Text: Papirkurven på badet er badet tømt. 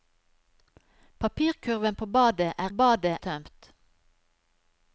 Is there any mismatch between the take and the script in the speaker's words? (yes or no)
no